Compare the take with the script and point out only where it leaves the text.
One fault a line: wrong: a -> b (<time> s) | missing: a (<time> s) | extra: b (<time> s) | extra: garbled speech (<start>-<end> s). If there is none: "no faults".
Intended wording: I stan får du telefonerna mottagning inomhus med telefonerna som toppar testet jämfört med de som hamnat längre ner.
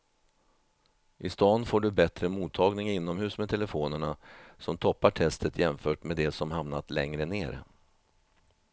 wrong: telefonerna -> bättre (1.9 s)